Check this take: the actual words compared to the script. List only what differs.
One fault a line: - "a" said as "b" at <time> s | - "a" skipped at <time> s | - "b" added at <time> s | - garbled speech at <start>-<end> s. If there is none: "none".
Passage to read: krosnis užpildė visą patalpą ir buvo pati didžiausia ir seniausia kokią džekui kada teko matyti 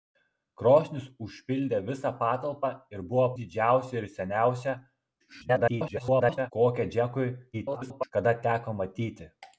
- "pati" skipped at 3.3 s
- garbled speech at 5.2-6.5 s
- garbled speech at 7.5-8.1 s